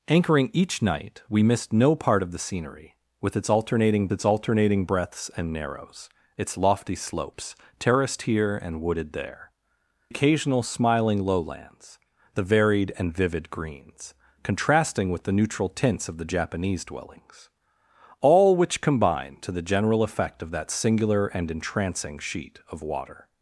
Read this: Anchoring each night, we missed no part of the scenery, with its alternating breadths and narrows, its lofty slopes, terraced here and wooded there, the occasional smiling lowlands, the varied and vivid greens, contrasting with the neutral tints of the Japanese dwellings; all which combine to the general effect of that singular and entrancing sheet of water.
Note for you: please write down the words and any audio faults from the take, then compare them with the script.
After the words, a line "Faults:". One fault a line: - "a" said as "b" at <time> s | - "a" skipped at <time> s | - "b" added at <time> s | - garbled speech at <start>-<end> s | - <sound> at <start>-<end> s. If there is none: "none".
Anchoring each night, we missed no part of the scenery, with its alternating its alternating breadths and narrows, its lofty slopes, terraced here and wooded there, occasional smiling lowlands, the varied and vivid greens, contrasting with the neutral tints of the Japanese dwellings; all which combine to the general effect of that singular and entrancing sheet of water.
Faults:
- "its alternating" added at 4.1 s
- "the" skipped at 9.5 s